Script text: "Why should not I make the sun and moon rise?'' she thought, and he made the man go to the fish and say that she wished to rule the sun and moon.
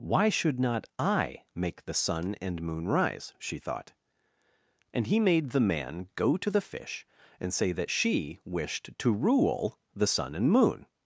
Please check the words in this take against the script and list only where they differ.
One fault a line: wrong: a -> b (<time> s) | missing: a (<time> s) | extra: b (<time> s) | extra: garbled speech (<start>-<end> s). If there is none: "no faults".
no faults